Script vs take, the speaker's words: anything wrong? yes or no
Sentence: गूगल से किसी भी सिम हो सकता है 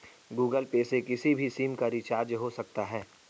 yes